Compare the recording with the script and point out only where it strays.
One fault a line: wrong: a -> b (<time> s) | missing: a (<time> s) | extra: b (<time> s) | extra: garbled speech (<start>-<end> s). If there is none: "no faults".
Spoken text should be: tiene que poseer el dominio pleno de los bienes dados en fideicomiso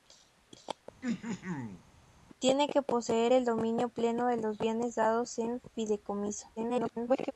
extra: garbled speech (6.6-7.3 s)